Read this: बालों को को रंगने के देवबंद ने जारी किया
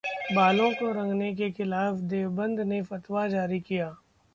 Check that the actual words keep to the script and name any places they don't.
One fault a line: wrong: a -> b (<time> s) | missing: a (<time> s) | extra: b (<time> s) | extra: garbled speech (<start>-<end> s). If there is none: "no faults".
missing: को (0.9 s)
extra: खिलाफ (1.5 s)
extra: फतवा (2.8 s)